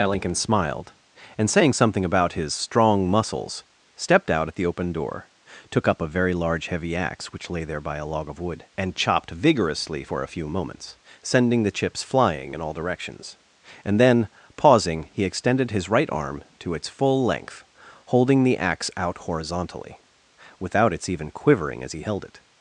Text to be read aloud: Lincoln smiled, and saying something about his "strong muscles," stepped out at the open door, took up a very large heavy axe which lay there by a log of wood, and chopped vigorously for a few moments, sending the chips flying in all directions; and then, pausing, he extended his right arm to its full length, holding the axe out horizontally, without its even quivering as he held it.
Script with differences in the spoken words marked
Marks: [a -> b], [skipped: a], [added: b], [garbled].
Lincoln smiled, and saying something about his "strong muscles," stepped out at the open door, took up a very large heavy axe which lay there by a log of wood, and chopped vigorously for a few moments, sending the chips flying in all directions; and then, pausing, he extended his right arm to its full length, holding the axe out horizontally, without its even quivering as he held it.